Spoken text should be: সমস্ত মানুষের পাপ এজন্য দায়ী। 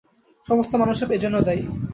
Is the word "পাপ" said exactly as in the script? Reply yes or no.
no